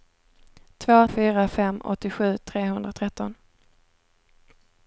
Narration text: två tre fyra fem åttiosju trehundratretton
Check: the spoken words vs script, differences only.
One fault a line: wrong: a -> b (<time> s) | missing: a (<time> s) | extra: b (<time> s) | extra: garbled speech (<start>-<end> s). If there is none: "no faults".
missing: tre (1.1 s)